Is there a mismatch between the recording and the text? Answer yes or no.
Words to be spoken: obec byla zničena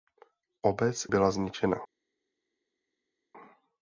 no